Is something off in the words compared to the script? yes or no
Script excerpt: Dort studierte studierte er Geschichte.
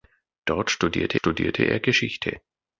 no